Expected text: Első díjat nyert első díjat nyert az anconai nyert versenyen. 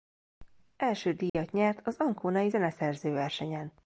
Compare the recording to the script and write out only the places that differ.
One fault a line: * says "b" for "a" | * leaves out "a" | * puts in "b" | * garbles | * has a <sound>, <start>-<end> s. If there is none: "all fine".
* has a dropout, 1.3-1.3 s
* leaves out "első díjat nyert"
* says "zeneszerző" for "nyert"